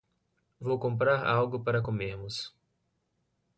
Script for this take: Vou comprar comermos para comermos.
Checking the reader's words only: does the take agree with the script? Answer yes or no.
no